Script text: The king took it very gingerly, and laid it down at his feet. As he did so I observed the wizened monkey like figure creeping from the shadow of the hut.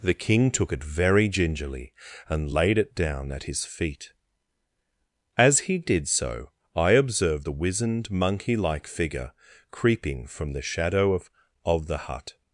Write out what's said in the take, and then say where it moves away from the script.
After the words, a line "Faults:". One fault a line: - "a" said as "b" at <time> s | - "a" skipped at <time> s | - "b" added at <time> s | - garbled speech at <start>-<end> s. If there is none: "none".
The king took it very gingerly, and laid it down at his feet. As he did so I observed the wizened monkey like figure creeping from the shadow of of the hut.
Faults:
- "of" added at 11.6 s